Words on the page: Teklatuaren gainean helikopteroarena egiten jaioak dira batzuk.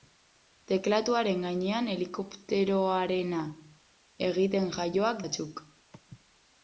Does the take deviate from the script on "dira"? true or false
true